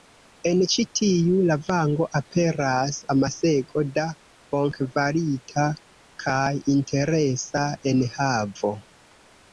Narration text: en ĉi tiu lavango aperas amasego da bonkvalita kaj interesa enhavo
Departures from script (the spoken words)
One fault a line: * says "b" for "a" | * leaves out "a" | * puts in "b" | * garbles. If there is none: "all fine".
all fine